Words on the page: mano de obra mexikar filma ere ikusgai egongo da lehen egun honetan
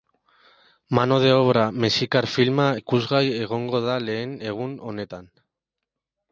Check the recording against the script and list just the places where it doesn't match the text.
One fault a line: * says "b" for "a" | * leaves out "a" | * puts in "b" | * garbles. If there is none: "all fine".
* leaves out "ere"